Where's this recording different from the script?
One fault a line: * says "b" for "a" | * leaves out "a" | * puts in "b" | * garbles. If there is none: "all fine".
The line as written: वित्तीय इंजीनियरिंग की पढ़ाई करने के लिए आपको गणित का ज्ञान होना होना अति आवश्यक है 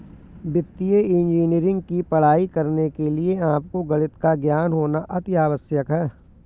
* leaves out "होना"